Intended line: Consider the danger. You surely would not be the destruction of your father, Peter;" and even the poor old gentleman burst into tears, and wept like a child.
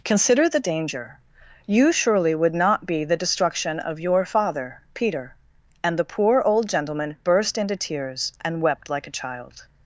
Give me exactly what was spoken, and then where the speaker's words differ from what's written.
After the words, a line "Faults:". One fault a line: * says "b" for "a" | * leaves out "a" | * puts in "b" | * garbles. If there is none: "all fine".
Consider the danger. You surely would not be the destruction of your father, Peter;" and the poor old gentleman burst into tears, and wept like a child.
Faults:
* leaves out "even"